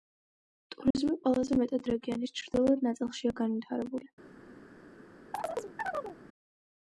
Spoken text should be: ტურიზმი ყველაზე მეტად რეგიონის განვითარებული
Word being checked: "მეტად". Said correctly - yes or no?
yes